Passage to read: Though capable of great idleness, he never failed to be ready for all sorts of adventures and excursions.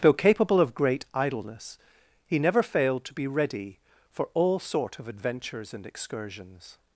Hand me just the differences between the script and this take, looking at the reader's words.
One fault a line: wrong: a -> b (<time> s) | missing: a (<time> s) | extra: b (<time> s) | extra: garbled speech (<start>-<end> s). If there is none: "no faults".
wrong: sorts -> sort (4.6 s)